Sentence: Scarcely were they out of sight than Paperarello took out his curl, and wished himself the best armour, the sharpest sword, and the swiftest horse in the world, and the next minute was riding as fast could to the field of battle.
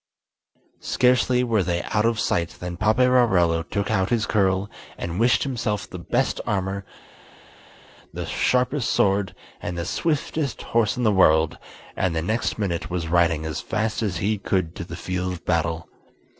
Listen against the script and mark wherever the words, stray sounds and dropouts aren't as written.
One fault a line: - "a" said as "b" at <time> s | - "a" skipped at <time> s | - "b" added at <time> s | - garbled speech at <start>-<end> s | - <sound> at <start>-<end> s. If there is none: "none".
- "as he" added at 14.0 s